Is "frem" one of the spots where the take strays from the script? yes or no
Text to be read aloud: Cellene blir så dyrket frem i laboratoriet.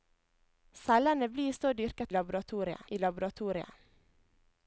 yes